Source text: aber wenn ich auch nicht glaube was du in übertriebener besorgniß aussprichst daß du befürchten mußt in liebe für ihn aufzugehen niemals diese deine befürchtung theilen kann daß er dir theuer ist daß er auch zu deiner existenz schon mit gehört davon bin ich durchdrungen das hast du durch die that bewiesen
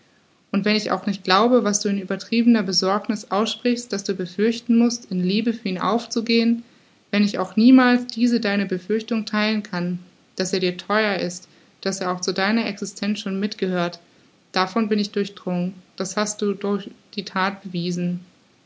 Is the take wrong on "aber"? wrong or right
wrong